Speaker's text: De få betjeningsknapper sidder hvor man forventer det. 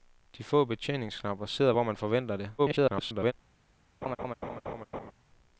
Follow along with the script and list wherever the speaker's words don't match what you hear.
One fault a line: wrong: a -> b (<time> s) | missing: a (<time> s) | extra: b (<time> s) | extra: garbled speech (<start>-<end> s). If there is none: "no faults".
extra: garbled speech (2.6-3.3 s)